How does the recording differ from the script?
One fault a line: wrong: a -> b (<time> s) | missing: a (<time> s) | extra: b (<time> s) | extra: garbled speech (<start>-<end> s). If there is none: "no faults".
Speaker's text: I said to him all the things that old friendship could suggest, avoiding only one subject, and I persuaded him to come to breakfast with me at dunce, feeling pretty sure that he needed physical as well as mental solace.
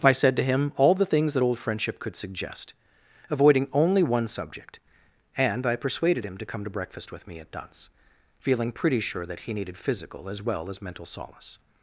no faults